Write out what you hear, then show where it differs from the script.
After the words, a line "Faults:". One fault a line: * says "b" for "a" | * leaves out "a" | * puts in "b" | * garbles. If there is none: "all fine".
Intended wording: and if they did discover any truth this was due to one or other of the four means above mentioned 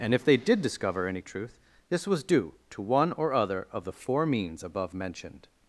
and if they did discover any truth this was due to one or other of the four means above mentioned
Faults:
all fine